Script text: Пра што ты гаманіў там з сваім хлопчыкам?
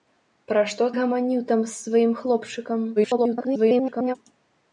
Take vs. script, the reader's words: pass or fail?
fail